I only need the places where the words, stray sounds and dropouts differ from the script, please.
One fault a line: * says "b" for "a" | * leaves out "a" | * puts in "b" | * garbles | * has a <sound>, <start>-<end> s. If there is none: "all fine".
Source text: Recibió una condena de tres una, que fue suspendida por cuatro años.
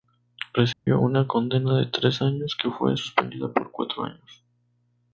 * has a dropout, 0.7-0.9 s
* says "años" for "una"